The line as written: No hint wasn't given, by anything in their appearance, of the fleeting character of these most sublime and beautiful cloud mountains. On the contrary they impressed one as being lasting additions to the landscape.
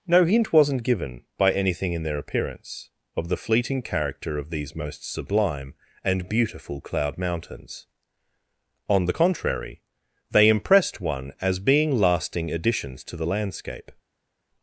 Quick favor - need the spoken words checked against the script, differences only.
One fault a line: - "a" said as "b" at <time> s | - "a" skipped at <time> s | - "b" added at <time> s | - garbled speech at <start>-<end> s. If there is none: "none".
none